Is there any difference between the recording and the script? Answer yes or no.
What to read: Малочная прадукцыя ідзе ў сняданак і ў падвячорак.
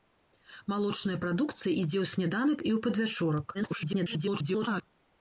yes